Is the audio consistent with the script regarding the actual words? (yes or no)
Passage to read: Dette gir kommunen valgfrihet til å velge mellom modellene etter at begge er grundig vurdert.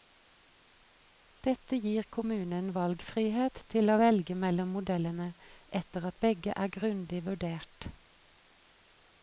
yes